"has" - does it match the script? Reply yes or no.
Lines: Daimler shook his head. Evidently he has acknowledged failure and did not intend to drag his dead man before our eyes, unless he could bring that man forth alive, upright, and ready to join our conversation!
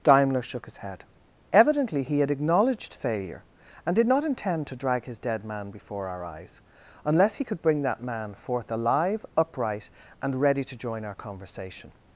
no